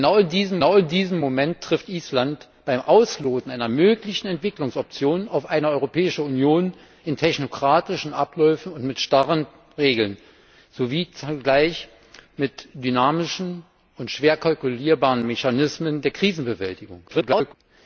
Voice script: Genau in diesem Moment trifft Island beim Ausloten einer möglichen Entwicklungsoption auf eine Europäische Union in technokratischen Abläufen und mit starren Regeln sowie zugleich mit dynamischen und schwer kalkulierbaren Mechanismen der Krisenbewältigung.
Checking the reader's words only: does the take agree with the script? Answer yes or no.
no